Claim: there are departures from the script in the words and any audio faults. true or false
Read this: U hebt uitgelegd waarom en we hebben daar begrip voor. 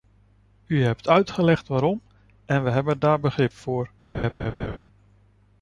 true